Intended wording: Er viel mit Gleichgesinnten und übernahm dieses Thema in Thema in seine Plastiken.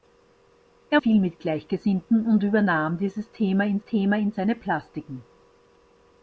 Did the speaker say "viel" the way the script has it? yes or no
yes